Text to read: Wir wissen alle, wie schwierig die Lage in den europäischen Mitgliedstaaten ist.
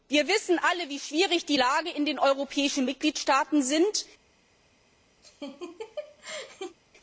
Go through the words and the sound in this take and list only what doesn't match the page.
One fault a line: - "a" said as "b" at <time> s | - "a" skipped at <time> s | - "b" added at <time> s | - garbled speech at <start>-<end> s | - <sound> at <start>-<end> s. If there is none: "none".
- laugh at 5.2-6.8 s